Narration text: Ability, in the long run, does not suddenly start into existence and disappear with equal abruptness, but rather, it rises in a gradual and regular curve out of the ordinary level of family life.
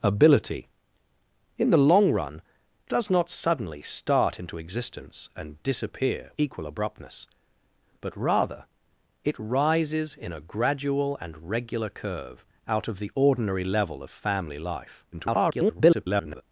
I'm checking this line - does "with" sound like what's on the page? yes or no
no